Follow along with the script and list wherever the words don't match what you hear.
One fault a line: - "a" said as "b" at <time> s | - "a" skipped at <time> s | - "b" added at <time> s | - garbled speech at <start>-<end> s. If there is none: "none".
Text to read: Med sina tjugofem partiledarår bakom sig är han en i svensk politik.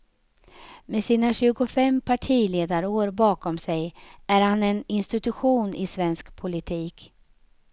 - "institution" added at 4.9 s